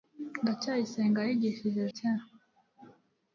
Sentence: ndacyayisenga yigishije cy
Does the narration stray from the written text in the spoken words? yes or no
no